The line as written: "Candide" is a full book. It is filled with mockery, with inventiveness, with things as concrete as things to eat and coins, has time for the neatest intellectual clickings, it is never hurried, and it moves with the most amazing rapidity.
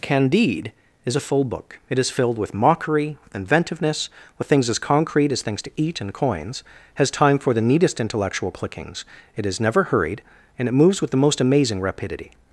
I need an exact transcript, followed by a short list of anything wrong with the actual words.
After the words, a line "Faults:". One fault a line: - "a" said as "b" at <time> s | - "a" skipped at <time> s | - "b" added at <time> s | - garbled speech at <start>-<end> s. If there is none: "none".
"Candide" is a full book. It is filled with mockery, with inventiveness, with things as concrete as things to eat and coins, has time for the neatest intellectual clickings, it is never hurried, and it moves with the most amazing rapidity.
Faults:
none